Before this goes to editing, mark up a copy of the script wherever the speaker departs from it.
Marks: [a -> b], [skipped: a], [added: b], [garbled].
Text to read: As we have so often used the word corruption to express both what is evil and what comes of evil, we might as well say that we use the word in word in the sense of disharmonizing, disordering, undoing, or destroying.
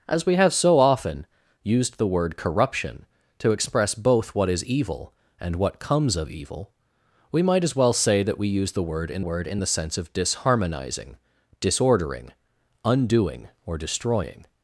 As we have so often used the word corruption to express both what is evil and what comes of evil, we might as well say that we use the word in word in the sense of disharmonizing, disordering, undoing, or destroying.